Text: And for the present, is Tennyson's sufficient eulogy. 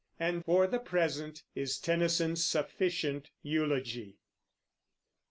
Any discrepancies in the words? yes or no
no